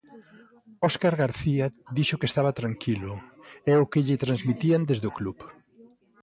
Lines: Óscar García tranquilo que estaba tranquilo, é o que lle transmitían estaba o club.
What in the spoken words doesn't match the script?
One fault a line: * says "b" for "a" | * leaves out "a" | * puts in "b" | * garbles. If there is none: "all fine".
* says "dixo" for "tranquilo"
* says "desde" for "estaba"